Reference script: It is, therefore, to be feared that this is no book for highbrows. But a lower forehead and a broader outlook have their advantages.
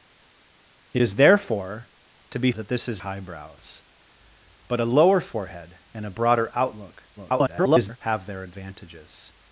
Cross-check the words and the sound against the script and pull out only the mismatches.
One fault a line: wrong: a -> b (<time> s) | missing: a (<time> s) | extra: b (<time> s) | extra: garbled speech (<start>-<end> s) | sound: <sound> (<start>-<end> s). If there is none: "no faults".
missing: feared (2.5 s)
missing: no book for (3.0 s)
extra: garbled speech (7.2-8.0 s)